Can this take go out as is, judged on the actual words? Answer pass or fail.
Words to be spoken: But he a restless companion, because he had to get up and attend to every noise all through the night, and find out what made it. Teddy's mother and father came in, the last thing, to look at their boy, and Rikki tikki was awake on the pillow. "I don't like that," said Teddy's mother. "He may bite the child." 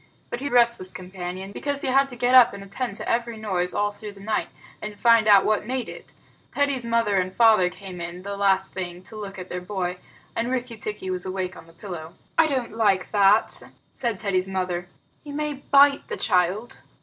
pass